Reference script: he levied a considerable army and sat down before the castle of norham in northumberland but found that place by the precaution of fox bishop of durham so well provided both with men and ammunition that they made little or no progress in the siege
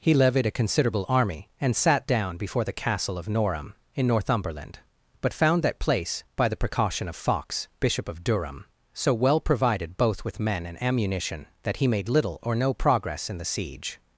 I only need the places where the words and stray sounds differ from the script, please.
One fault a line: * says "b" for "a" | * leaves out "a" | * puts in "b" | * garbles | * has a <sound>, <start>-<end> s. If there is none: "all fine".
* says "he" for "they"